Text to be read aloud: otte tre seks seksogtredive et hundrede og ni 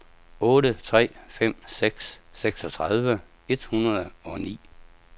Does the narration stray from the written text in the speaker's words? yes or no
yes